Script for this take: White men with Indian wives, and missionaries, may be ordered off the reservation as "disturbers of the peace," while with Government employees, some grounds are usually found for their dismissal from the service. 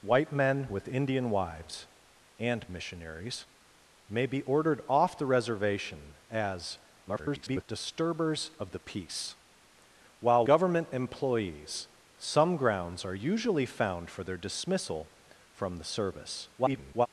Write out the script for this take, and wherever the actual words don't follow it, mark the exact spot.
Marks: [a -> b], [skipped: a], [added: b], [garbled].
White men with Indian wives, and missionaries, may be ordered off the reservation as [garbled] "disturbers of the peace," while [skipped: with] Government employees, some grounds are usually found for their dismissal from the service. [garbled]